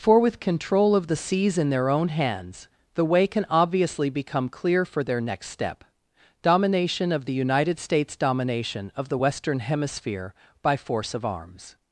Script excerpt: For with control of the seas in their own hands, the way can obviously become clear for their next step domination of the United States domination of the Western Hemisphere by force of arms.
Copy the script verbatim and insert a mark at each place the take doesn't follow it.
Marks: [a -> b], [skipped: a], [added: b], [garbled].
For with control of the seas in their own hands, the way can obviously become clear for their next step domination of the United States domination of the Western Hemisphere by force of arms.